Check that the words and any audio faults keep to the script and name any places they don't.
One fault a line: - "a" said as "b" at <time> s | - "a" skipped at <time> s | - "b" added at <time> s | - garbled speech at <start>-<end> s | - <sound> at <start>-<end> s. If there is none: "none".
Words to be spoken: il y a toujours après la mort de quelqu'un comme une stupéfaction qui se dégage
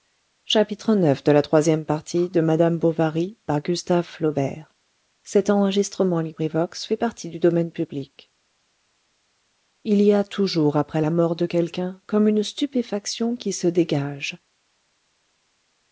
none